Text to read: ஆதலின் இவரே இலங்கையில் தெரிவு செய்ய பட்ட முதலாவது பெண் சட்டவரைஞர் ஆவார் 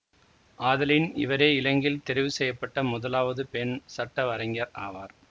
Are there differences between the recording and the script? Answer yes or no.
no